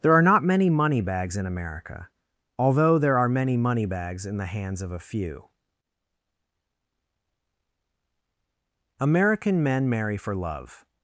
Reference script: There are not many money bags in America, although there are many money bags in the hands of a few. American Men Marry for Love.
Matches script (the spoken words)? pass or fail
pass